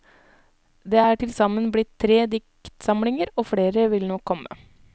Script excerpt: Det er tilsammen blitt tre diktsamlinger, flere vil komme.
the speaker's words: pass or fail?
fail